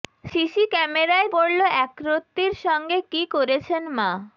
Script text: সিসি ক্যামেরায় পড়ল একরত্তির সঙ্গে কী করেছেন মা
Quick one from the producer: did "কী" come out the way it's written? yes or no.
yes